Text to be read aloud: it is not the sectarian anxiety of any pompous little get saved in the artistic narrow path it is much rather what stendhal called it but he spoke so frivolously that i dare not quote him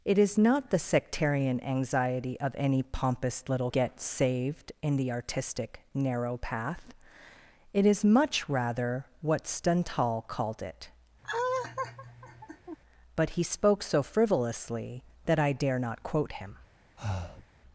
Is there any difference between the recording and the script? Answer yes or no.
no